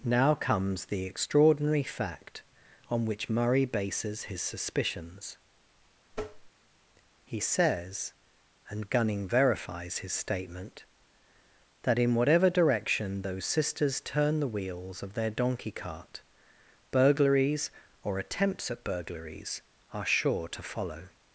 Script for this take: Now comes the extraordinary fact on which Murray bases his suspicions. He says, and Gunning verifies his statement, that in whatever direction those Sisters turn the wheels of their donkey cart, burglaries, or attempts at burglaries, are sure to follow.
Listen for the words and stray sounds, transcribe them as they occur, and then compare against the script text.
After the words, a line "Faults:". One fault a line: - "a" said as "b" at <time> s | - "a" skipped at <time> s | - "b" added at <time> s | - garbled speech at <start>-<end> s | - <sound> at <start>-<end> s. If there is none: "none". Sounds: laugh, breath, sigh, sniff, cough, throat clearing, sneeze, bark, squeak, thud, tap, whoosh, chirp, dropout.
Now comes the extraordinary fact on which Murray bases his suspicions. He says, and Gunning verifies his statement, that in whatever direction those Sisters turn the wheels of their donkey cart, burglaries, or attempts at burglaries, are sure to follow.
Faults:
- tap at 6.1-6.5 s